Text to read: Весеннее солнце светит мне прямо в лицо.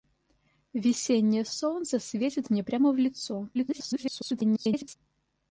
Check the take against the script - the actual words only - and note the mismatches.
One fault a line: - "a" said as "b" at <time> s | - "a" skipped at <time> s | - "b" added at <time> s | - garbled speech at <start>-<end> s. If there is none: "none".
- garbled speech at 3.5-5.0 s